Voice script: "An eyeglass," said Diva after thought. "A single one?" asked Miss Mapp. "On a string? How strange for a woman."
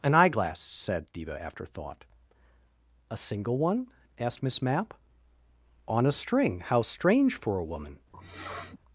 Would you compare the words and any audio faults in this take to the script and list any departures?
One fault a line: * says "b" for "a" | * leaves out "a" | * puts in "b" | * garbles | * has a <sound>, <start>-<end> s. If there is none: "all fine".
* has a sniff, 8.1-8.8 s